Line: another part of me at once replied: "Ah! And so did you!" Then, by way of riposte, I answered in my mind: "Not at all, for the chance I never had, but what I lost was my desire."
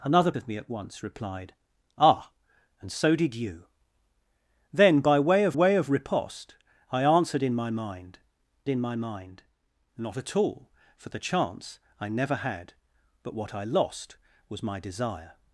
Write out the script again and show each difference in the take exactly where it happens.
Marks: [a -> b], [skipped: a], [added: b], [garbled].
another [skipped: part] of me at once replied: "Ah! And so did you!" Then, by way of [added: way of] riposte, I answered in my mind: [added: in my mind] "Not at all, for the chance I never had, but what I lost was my desire."